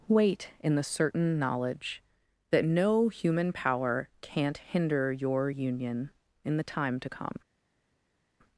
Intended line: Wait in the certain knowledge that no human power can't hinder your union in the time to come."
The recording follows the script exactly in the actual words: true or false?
true